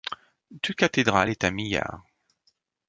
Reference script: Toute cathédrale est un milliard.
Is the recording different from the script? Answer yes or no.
no